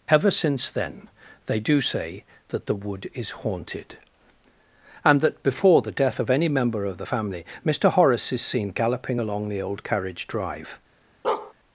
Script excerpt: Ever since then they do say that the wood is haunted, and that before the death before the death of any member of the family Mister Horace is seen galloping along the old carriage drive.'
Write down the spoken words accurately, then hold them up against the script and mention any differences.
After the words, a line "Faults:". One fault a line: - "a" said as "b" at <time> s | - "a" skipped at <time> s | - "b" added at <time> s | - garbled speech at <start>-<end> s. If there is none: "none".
Ever since then they do say that the wood is haunted, and that before the death of any member of the family Mister Horace is seen galloping along the old carriage drive.'
Faults:
- "before the death" skipped at 6.2 s